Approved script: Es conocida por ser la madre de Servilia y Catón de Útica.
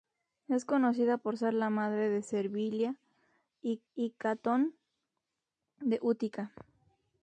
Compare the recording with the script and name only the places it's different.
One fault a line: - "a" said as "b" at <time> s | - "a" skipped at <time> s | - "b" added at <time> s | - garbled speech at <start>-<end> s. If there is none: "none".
- "y" added at 3.9 s